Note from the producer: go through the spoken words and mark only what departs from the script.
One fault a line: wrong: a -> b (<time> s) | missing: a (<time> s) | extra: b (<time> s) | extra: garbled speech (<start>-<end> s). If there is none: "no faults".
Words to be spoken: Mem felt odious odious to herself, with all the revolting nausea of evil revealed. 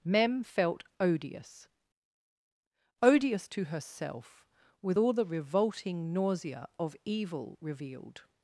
no faults